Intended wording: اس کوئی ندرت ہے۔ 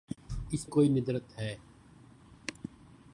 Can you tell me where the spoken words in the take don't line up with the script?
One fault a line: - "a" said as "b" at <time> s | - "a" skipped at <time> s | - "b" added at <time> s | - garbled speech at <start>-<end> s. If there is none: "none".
none